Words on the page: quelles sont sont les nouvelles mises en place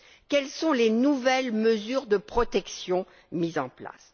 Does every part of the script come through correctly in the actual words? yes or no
no